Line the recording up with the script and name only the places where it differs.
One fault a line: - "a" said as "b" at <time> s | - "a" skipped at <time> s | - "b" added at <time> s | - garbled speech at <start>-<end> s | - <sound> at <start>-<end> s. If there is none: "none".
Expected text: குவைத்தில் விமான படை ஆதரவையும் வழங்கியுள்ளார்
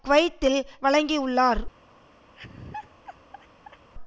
- "விமான படை ஆதரவையும்" skipped at 0.6 s
- laugh at 2.3-3.9 s